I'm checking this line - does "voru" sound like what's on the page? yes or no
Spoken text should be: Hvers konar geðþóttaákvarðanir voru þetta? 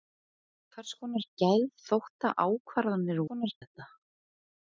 no